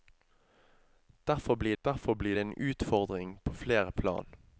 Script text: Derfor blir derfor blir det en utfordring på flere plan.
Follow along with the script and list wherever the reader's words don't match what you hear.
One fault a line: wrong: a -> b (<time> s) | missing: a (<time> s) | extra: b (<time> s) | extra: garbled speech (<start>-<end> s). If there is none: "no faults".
no faults